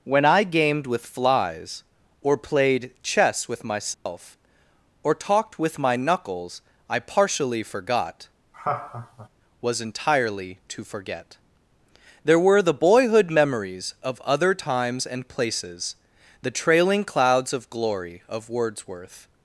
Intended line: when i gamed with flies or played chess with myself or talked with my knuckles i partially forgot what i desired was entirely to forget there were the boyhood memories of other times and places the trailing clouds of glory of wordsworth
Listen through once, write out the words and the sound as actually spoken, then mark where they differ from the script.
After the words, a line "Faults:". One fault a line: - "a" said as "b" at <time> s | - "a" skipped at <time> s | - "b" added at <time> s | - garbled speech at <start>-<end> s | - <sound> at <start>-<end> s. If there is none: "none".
when i gamed with flies or played chess with myself or talked with my knuckles i partially forgot was entirely to forget there were the boyhood memories of other times and places the trailing clouds of glory of wordsworth
Faults:
- dropout at 3.9-4.1 s
- "what i desired" skipped at 8.3 s
- laugh at 8.5-9.3 s